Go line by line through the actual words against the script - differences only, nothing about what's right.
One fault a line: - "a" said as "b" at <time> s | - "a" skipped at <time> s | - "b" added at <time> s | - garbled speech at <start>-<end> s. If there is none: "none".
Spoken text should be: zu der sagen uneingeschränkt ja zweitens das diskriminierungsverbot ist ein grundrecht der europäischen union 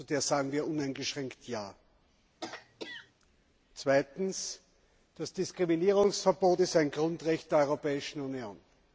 - "wir" added at 0.5 s